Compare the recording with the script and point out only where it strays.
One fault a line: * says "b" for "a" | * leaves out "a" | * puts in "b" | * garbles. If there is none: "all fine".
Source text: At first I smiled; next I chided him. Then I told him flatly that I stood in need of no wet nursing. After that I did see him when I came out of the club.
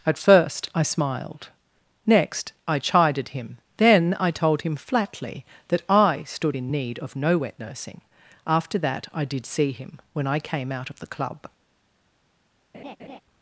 all fine